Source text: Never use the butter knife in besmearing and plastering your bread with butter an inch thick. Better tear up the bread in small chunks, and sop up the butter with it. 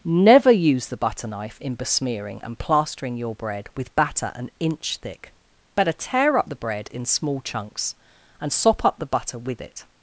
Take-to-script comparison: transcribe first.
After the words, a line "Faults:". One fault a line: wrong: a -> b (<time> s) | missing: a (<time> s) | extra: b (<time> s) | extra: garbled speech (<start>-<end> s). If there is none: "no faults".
Never use the butter knife in besmearing and plastering your bread with batter an inch thick. Better tear up the bread in small chunks, and sop up the butter with it.
Faults:
wrong: butter -> batter (4.0 s)